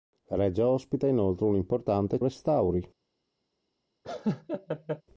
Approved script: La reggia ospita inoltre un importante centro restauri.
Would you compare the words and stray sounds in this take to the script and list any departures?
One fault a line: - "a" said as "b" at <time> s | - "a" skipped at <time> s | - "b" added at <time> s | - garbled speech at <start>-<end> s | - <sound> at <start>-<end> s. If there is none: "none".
- "centro" skipped at 2.2 s
- laugh at 4.0-5.0 s